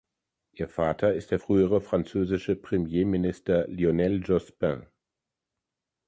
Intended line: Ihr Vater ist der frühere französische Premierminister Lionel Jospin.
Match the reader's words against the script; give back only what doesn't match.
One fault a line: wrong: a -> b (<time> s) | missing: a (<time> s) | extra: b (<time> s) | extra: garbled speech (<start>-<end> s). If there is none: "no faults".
no faults